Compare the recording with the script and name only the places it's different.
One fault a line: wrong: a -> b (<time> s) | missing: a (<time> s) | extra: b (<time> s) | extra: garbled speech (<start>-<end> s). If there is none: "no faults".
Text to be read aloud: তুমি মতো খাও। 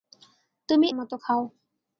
no faults